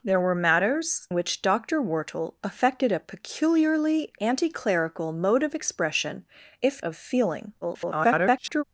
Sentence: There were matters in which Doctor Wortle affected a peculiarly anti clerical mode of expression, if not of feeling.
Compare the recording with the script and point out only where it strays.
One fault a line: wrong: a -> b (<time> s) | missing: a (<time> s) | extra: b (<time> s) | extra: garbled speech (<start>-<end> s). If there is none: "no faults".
missing: in (1.1 s)
missing: not (6.9 s)
extra: garbled speech (7.6-8.6 s)